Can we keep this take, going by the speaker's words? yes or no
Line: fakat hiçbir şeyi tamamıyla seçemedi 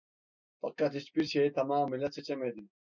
yes